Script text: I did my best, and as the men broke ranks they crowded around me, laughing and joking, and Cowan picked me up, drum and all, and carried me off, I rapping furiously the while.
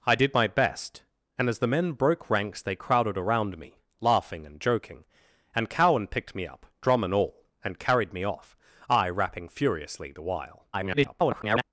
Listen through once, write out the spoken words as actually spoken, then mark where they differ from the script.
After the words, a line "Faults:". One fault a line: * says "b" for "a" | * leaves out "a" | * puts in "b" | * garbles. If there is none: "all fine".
I did my best, and as the men broke ranks they crowded around me, laughing and joking, and Cowan picked me up, drum and all, and carried me off, I rapping furiously the while. [garbled]
Faults:
* garbles